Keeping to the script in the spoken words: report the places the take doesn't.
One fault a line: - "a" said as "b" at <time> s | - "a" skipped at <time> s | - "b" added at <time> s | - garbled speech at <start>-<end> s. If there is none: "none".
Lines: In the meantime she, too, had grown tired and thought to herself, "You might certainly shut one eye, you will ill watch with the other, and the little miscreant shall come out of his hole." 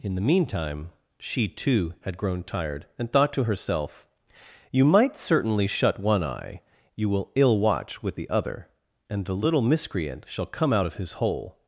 none